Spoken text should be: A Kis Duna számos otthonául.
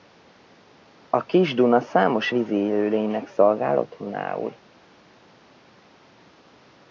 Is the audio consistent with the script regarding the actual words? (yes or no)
no